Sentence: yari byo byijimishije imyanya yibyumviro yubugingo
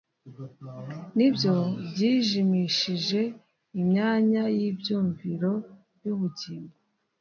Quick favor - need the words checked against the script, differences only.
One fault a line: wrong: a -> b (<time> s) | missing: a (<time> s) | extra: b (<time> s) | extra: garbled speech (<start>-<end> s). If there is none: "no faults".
wrong: yari -> ni (1.2 s)